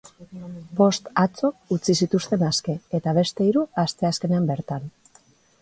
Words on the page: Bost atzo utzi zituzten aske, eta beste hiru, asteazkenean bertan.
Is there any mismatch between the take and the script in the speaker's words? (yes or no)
no